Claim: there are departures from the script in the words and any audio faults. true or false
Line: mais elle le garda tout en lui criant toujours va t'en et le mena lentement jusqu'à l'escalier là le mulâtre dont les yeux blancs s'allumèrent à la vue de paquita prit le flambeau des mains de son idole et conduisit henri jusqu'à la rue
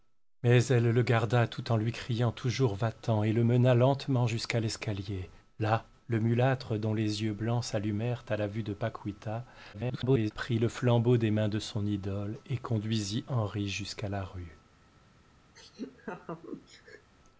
true